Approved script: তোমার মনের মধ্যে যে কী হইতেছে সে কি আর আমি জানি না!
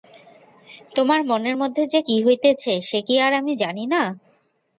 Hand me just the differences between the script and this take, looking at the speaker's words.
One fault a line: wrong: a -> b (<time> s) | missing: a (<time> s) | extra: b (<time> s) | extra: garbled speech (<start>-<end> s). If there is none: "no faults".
no faults